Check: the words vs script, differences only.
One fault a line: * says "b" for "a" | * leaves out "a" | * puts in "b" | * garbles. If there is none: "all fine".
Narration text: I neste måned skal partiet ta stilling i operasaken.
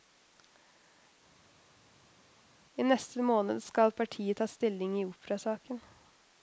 all fine